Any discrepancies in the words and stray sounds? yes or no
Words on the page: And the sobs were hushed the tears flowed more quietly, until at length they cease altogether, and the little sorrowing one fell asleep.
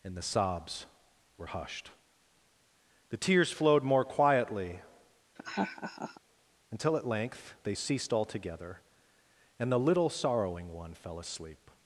yes